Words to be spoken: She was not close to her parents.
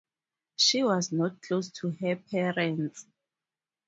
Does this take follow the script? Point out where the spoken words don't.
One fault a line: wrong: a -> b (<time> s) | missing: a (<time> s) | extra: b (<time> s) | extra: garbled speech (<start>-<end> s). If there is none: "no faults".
no faults